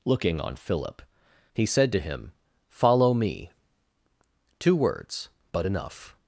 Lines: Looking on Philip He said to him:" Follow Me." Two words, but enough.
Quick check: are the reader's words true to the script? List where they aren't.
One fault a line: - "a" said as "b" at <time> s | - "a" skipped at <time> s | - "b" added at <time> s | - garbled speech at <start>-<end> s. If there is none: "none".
none